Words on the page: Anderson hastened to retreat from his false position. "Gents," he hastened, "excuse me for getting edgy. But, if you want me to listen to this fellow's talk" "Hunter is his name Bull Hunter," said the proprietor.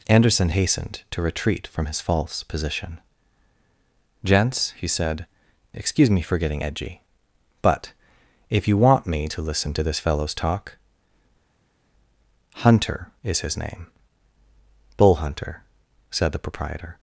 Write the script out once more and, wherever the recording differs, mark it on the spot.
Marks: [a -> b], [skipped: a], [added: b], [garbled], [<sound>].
Anderson hastened to retreat from his false position. "Gents," he [hastened, -> said] "excuse me for getting edgy. But, if you want me to listen to this fellow's talk" "Hunter is his name Bull Hunter," said the proprietor.